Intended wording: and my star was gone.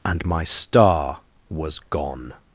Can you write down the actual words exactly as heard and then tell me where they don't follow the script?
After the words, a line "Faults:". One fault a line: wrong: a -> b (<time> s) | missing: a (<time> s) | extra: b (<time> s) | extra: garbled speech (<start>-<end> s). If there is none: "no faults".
and my star was gone.
Faults:
no faults